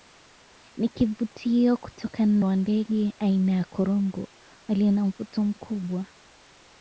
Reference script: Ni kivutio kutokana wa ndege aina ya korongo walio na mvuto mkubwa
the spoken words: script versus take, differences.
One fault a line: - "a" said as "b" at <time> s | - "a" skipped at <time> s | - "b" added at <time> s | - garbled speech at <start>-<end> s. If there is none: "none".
none